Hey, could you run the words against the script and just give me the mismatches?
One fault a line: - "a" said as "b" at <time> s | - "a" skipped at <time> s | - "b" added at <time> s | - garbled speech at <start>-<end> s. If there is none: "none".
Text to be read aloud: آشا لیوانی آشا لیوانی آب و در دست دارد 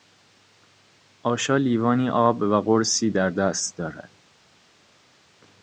- "آشا لیوانی" skipped at 2.1 s
- "قرصی" added at 2.6 s